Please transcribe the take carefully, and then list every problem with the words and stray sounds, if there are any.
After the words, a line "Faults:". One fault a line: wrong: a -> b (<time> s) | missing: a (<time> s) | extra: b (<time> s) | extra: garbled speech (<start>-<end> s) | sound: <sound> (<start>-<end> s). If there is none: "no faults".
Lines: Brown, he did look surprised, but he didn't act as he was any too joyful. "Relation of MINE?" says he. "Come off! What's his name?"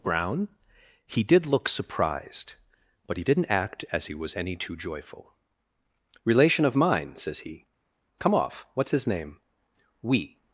Brown, he did look surprised, but he didn't act as he was any too joyful. "Relation of MINE?" says he. "Come off! What's his name?" We
Faults:
extra: We (10.0 s)